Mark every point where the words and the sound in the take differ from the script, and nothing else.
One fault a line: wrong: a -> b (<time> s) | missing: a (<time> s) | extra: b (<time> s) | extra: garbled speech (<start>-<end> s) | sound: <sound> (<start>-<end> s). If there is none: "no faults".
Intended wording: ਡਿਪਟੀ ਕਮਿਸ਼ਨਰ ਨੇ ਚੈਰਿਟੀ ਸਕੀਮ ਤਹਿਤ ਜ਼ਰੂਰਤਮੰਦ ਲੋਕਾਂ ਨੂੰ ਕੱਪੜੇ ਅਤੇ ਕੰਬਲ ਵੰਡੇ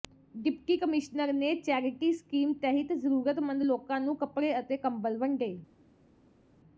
no faults